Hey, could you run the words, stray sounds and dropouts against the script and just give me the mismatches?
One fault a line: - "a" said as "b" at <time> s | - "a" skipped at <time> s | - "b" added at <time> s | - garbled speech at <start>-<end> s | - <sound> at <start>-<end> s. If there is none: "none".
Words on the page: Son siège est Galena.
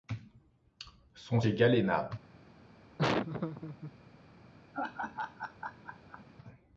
- "siège" skipped at 1.4 s
- laugh at 3.0-3.9 s
- laugh at 4.7-6.2 s